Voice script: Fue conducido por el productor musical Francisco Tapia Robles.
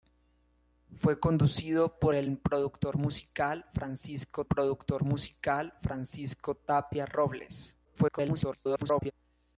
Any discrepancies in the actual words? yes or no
yes